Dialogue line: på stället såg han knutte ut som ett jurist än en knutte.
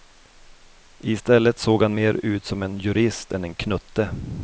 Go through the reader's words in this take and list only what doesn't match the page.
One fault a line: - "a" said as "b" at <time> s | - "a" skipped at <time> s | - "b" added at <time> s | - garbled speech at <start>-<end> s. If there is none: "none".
- "på" said as "I" at 1.0 s
- "knutte" said as "mer" at 1.9 s
- "ett" said as "en" at 2.6 s